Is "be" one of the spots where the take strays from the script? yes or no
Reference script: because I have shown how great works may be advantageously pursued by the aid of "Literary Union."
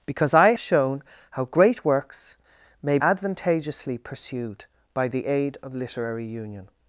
yes